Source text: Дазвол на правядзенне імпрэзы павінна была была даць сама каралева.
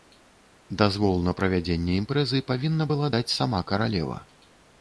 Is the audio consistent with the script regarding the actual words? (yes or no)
no